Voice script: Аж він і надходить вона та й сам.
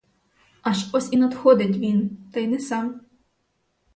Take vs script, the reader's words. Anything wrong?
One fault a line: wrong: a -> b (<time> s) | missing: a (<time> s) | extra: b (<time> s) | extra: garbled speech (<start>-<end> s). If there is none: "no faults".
wrong: він -> ось (0.9 s)
wrong: вона -> він (1.8 s)
extra: не (2.5 s)